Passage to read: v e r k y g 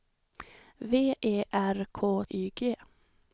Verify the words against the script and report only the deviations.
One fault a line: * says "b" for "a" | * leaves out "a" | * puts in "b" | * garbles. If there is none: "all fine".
all fine